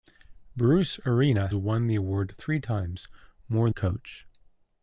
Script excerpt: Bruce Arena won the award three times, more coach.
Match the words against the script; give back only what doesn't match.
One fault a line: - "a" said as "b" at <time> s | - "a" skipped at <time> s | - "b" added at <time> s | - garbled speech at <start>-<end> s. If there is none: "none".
none